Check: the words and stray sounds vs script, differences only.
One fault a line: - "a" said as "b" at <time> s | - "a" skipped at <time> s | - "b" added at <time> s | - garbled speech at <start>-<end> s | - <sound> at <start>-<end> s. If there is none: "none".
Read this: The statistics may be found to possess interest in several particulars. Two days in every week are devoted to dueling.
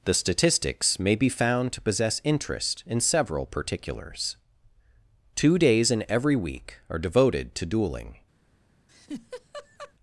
- laugh at 8.9-9.9 s